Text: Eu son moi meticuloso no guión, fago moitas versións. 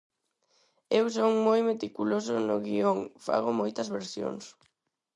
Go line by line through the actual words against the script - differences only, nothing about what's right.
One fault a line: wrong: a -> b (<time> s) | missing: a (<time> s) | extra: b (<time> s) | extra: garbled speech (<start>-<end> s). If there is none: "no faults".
no faults